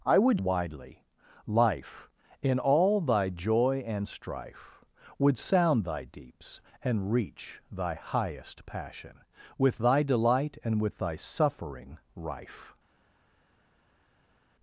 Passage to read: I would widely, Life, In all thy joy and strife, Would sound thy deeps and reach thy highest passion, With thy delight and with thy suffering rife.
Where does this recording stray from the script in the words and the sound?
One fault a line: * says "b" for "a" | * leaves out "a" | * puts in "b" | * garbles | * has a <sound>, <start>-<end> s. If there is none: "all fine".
all fine